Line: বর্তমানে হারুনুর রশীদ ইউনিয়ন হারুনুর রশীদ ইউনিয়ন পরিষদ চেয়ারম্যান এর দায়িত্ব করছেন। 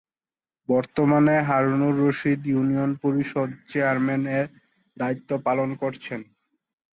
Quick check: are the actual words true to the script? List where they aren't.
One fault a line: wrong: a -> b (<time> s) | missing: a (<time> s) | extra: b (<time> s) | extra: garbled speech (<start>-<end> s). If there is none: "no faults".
missing: হারুনুর রশীদ ইউনিয়ন (2.9 s)
extra: পালন (5.5 s)